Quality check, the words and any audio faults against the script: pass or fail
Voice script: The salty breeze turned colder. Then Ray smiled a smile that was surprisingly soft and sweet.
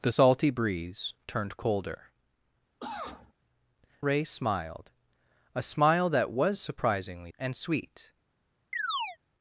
fail